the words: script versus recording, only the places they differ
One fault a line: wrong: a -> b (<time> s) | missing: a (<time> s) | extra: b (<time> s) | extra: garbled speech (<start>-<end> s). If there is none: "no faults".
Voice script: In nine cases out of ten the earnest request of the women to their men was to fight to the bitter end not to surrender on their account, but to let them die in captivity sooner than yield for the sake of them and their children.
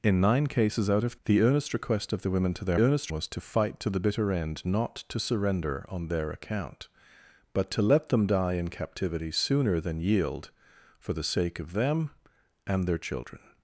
missing: ten (1.1 s)
wrong: men -> earnest (2.8 s)